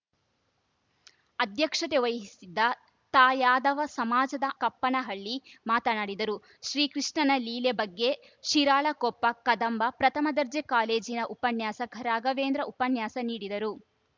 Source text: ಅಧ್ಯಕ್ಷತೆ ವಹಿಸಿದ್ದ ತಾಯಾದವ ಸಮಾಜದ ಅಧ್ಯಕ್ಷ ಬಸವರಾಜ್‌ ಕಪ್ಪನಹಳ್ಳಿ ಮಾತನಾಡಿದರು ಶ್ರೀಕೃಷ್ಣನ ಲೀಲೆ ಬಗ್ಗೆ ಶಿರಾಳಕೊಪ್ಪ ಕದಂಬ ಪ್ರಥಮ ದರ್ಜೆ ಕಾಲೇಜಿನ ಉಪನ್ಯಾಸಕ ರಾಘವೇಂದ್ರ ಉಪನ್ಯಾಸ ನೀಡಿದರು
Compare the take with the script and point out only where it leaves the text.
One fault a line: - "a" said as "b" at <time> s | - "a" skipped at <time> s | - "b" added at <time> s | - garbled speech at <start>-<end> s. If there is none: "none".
- "ಅಧ್ಯಕ್ಷ ಬಸವರಾಜ್" skipped at 4.5 s